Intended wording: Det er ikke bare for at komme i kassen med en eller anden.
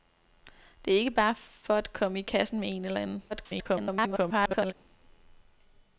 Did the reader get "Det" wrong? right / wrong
right